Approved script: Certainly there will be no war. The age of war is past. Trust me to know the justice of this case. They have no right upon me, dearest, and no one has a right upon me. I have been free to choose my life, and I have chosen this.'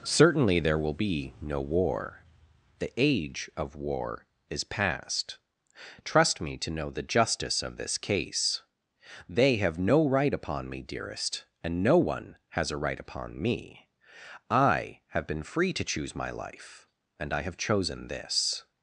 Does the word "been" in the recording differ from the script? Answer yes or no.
no